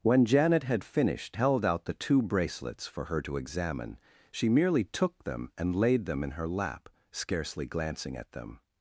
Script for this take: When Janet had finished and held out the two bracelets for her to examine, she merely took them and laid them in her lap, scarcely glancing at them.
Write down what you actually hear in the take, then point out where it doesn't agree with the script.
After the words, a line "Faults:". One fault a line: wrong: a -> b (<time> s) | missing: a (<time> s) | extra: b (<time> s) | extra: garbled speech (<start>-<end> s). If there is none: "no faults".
When Janet had finished held out the two bracelets for her to examine, she merely took them and laid them in her lap, scarcely glancing at them.
Faults:
missing: and (1.4 s)